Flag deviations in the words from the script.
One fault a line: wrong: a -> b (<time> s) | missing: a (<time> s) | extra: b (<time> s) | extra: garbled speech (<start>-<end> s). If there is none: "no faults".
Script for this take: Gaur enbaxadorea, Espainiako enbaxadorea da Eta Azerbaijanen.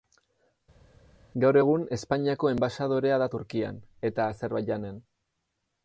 wrong: enbaxadorea -> egun (1.6 s)
extra: Turkian (3.3 s)